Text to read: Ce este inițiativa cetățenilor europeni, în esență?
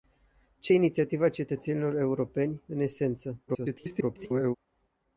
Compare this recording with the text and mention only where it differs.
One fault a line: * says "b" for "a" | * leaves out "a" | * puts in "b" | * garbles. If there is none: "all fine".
* leaves out "este"
* garbles